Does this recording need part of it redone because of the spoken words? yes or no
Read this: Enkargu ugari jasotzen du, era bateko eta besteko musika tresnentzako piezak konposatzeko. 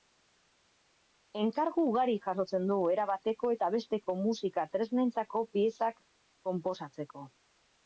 no